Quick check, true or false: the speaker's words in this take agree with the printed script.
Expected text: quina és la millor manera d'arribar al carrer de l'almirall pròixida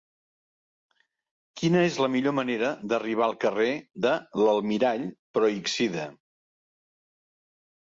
true